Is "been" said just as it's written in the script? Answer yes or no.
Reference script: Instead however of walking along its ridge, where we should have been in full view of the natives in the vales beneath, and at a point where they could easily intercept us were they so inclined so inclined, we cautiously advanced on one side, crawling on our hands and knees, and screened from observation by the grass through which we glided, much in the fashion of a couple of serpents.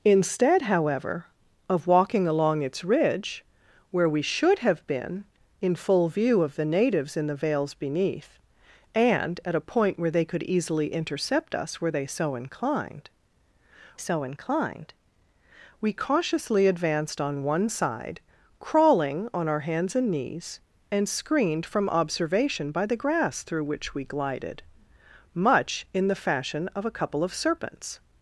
yes